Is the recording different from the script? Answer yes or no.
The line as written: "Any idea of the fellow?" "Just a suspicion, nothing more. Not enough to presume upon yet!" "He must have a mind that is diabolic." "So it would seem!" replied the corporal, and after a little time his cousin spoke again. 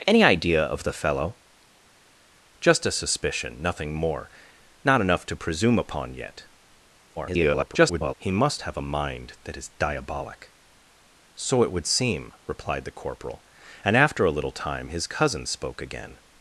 yes